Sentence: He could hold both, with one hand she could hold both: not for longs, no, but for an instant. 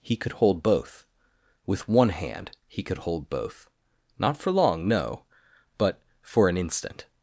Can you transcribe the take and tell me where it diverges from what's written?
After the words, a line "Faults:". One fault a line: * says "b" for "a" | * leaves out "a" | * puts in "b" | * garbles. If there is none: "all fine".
He could hold both, with one hand he could hold both: not for long, no, but for an instant.
Faults:
* says "he" for "she"
* says "long" for "longs"